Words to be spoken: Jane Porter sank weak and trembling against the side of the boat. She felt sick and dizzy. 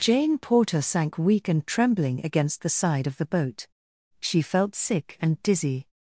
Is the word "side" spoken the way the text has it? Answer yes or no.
yes